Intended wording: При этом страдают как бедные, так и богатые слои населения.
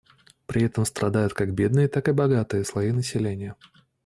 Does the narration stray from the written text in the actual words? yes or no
no